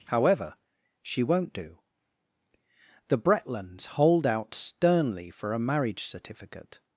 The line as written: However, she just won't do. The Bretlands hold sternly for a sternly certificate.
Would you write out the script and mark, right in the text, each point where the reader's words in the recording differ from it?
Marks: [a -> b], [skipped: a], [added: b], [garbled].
However, she [skipped: just] won't do. The Bretlands hold [added: out] sternly for a [sternly -> marriage] certificate.